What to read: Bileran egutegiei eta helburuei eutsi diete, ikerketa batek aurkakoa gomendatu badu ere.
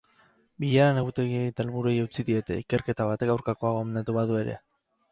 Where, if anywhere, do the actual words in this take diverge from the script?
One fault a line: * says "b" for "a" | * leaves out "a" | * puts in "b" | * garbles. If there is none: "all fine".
all fine